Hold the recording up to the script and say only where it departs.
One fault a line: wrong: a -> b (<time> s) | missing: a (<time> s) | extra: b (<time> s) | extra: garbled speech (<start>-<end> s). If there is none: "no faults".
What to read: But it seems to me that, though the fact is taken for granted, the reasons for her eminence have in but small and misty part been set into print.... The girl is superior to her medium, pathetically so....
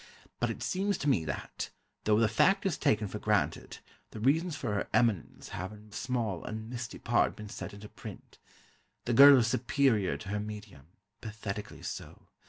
missing: but (5.9 s)